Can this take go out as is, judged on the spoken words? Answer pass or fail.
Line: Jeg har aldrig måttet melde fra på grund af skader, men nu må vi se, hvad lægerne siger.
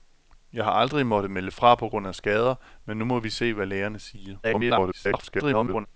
fail